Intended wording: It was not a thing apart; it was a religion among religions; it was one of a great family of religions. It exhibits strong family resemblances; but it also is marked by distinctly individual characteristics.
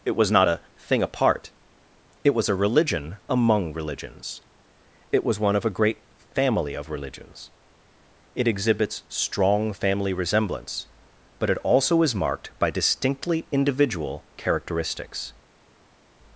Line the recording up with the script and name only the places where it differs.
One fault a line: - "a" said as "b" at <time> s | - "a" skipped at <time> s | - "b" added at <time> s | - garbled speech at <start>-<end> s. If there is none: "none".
- "resemblances" said as "resemblance" at 10.1 s